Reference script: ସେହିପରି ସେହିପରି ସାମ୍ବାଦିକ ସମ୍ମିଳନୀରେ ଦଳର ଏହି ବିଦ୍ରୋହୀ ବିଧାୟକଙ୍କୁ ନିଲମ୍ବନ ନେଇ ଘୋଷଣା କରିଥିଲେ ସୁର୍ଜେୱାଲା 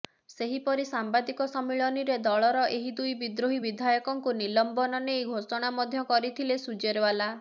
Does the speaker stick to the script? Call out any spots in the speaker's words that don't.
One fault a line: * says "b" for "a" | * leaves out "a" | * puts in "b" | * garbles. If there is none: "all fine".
* leaves out "ସେହିପରି"
* puts in "ଦୁଇ"
* puts in "ମଧ୍ୟ"